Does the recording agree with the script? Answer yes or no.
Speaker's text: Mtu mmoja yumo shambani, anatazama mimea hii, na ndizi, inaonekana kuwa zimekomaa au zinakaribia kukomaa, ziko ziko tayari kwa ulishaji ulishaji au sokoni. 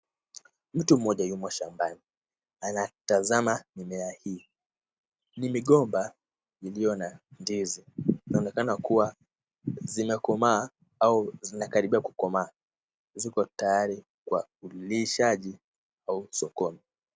no